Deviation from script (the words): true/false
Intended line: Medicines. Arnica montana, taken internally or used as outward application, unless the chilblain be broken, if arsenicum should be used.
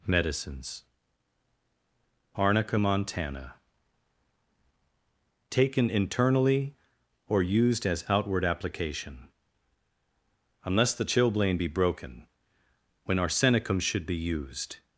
true